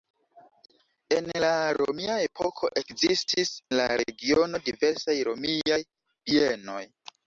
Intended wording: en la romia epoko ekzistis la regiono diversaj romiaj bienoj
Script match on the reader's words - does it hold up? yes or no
yes